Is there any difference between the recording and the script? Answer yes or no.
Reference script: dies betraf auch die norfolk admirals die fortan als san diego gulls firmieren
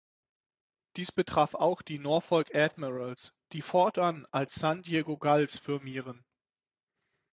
no